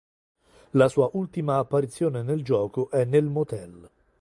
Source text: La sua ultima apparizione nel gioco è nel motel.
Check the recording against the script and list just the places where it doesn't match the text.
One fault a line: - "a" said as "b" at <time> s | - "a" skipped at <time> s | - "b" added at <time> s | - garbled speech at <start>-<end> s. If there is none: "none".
none